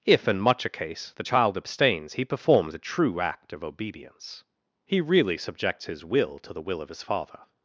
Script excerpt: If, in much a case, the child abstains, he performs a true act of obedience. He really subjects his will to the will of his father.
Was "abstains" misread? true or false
false